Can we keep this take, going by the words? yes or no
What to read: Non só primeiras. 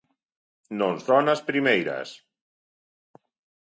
no